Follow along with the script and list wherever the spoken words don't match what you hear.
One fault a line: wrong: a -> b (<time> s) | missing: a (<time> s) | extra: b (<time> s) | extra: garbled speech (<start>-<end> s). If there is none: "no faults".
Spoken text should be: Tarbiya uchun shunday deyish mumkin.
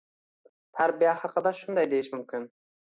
wrong: uchun -> haqida (1.2 s)